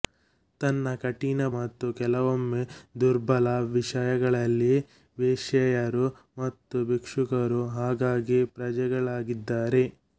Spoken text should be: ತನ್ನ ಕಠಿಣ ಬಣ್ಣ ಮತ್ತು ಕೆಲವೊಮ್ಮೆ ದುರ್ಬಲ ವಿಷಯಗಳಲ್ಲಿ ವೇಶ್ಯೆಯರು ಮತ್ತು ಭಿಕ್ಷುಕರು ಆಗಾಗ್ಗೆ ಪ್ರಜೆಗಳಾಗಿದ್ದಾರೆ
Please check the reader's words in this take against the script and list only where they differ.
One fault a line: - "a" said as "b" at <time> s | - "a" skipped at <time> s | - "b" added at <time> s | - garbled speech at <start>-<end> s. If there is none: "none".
- "ಬಣ್ಣ" skipped at 1.4 s